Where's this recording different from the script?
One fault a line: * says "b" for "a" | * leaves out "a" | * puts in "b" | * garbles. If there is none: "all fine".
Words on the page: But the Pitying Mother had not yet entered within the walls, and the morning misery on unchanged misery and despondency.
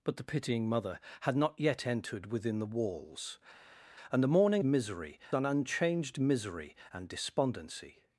all fine